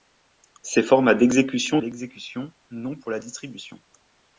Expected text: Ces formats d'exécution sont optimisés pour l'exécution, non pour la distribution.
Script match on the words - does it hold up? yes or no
no